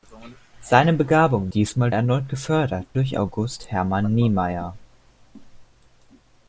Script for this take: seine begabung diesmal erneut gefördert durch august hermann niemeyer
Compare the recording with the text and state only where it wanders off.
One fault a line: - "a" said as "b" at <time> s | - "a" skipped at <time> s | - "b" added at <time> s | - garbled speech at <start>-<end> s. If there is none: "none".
none